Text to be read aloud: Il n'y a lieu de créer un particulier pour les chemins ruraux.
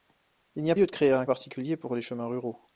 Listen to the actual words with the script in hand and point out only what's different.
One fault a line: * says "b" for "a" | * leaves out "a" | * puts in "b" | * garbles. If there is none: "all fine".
all fine